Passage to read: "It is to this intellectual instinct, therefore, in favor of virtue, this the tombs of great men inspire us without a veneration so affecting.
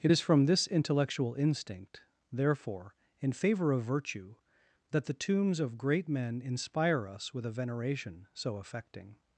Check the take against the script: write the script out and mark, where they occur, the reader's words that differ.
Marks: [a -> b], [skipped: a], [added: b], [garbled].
"It is [to -> from] this intellectual instinct, therefore, in favor of virtue, [this -> that] the tombs of great men inspire us [without -> with] a veneration so affecting.